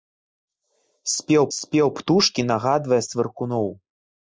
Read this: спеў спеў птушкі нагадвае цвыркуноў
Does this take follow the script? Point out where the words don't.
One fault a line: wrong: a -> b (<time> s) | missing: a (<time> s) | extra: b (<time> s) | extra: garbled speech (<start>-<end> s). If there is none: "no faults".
no faults